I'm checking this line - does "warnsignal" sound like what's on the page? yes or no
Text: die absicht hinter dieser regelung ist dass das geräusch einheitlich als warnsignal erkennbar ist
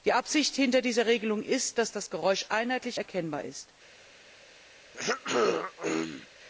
no